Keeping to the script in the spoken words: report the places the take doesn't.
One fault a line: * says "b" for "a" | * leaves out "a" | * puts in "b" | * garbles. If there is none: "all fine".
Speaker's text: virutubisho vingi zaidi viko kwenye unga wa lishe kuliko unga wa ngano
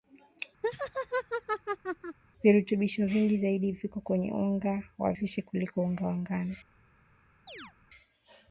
all fine